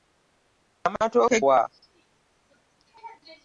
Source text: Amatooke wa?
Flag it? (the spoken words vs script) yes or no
no